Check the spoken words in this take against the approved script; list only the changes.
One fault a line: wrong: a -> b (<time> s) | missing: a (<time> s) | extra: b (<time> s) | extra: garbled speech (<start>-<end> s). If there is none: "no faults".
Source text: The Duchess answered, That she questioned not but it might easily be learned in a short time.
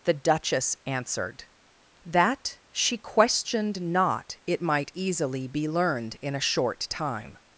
missing: but (4.4 s)